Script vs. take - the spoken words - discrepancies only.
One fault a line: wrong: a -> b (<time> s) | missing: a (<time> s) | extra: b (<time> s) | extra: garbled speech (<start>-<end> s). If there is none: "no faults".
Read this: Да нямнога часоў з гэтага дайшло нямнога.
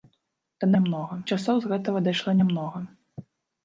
no faults